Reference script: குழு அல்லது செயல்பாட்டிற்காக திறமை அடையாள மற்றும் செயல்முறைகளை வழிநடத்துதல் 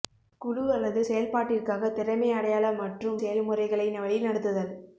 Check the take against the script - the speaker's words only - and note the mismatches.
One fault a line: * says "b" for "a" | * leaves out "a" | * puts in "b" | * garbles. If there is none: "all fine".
all fine